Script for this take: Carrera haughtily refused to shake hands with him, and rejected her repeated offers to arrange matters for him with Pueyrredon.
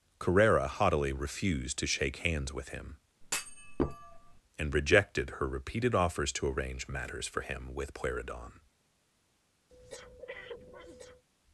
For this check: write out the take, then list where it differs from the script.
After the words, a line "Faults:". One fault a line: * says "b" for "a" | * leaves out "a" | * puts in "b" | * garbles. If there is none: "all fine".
Carrera haughtily refused to shake hands with him, and rejected her repeated offers to arrange matters for him with Pueyrredon.
Faults:
all fine